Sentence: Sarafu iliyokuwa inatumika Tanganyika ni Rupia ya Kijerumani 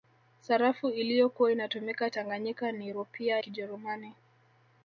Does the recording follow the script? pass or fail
fail